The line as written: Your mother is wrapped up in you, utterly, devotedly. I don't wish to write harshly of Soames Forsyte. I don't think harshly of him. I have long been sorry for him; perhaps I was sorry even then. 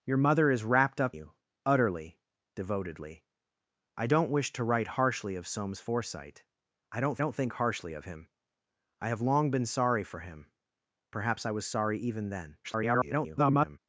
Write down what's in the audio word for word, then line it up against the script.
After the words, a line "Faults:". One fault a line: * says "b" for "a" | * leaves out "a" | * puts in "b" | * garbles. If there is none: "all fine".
Your mother is wrapped up you, utterly, devotedly. I don't wish to write harshly of Soames Forsyte. I don't don't think harshly of him. I have long been sorry for him; perhaps I was sorry even then. [garbled]
Faults:
* leaves out "in"
* puts in "don't"
* garbles